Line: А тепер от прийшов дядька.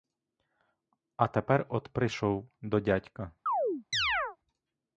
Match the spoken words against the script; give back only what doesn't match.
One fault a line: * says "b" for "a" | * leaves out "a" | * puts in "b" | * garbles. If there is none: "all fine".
* puts in "до"